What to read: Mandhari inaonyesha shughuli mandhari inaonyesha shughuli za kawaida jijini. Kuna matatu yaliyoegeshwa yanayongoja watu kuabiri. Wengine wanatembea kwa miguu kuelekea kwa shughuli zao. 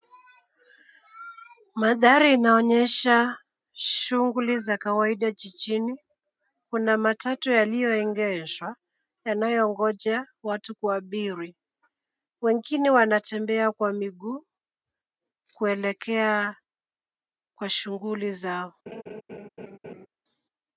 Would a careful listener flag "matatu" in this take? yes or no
no